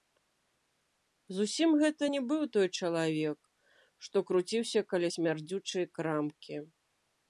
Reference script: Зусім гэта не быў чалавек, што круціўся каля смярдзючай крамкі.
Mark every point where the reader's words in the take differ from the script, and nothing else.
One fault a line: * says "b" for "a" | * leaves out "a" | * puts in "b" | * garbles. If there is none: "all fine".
* puts in "той"